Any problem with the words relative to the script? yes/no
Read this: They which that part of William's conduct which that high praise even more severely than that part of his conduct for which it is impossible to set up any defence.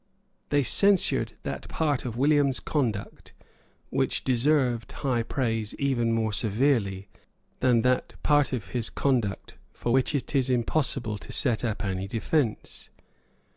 yes